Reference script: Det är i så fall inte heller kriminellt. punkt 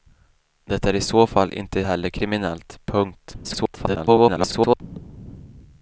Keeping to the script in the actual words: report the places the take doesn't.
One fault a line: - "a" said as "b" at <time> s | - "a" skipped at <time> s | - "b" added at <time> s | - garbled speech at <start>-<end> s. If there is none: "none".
- garbled speech at 3.4-4.8 s